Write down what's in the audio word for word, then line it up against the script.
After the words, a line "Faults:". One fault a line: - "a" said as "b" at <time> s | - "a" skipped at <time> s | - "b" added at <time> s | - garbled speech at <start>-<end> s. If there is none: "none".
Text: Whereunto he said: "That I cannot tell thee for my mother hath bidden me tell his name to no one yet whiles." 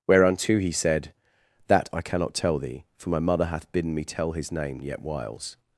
Whereunto he said: "That I cannot tell thee for my mother hath bidden me tell his name yet whiles."
Faults:
- "to no one" skipped at 4.8 s